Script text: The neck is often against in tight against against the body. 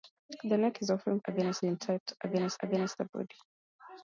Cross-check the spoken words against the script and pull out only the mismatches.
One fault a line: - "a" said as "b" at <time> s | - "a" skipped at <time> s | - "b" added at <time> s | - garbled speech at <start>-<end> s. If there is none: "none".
none